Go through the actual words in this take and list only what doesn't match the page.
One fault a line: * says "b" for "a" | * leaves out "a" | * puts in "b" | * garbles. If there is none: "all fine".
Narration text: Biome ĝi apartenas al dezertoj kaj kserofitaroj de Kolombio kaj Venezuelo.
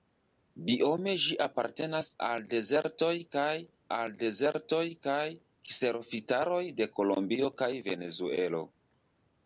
* puts in "al dezertoj kaj"